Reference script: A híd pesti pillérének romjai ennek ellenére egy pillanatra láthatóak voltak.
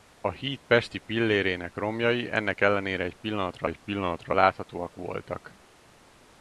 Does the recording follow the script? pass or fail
fail